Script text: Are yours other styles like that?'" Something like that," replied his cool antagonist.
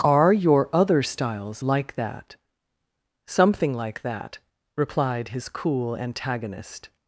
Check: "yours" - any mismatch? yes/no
yes